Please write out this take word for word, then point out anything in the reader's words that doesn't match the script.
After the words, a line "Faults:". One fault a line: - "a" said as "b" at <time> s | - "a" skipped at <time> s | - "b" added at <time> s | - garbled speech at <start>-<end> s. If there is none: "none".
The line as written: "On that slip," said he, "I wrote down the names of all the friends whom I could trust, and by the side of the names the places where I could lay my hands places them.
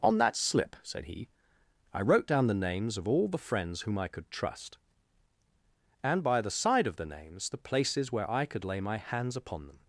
"On that slip," said he, "I wrote down the names of all the friends whom I could trust, and by the side of the names the places where I could lay my hands upon them.
Faults:
- "places" said as "upon" at 9.4 s